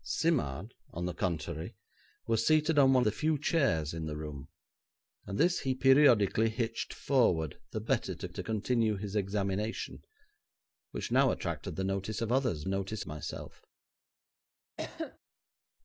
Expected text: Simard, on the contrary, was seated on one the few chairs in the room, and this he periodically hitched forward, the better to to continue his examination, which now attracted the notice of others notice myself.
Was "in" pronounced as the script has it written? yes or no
yes